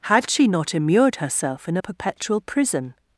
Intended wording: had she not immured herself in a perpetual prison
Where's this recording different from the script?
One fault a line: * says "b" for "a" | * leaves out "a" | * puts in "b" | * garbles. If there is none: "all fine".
all fine